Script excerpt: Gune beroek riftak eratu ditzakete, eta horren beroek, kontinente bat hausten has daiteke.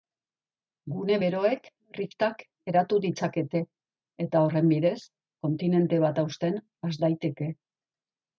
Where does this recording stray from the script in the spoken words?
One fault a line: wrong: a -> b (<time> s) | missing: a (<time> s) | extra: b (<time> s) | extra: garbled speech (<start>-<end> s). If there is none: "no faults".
wrong: beroek -> bidez (4.7 s)